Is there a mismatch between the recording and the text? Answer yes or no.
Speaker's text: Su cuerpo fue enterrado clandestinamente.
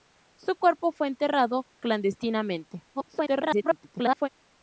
yes